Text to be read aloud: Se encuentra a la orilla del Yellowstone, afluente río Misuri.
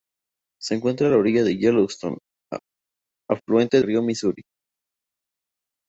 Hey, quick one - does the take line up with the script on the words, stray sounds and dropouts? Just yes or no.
yes